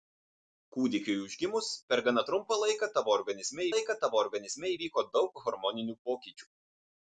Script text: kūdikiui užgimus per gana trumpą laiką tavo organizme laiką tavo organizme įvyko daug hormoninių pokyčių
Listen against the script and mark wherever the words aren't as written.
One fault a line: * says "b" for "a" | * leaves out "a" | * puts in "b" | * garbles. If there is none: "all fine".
all fine